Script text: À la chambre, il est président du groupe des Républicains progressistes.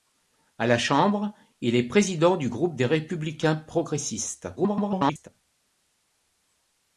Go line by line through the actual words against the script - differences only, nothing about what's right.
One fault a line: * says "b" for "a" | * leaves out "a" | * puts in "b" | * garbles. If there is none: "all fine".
* garbles